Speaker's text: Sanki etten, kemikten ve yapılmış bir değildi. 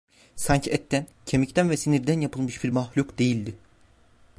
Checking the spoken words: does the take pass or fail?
fail